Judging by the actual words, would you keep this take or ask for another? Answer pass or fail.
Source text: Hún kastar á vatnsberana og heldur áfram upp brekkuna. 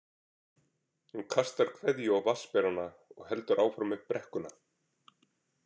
fail